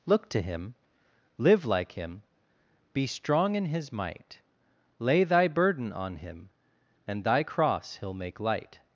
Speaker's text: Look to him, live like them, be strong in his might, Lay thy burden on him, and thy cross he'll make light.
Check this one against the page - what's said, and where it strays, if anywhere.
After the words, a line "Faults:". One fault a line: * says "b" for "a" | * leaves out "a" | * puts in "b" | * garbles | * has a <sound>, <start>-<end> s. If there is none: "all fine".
Look to him, live like him, be strong in his might, Lay thy burden on him, and thy cross he'll make light.
Faults:
* says "him" for "them"